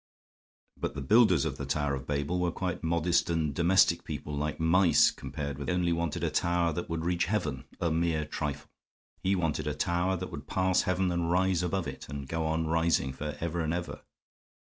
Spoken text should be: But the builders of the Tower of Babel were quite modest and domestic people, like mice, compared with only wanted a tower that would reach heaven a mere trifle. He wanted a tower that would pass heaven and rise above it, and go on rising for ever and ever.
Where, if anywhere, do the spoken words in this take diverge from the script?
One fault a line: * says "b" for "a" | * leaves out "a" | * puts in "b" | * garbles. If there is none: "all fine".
all fine